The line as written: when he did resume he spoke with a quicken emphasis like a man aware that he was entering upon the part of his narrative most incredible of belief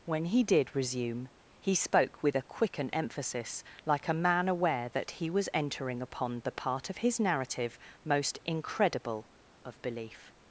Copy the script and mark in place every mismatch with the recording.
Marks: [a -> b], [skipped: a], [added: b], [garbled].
when he did resume he spoke with a quicken emphasis like a man aware that he was entering upon the part of his narrative most incredible of belief